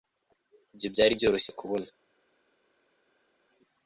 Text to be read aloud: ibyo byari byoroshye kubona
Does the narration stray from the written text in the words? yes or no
no